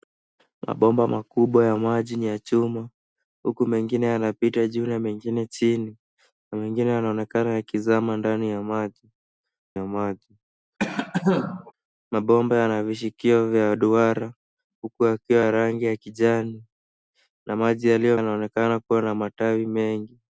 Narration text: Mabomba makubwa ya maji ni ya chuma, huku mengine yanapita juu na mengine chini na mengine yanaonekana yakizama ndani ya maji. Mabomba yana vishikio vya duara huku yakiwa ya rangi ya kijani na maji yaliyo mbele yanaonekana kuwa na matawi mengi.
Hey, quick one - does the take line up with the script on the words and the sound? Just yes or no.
no